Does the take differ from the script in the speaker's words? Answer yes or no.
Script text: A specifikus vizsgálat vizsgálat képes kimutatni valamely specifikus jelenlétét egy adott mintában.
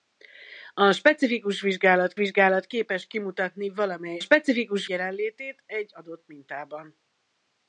no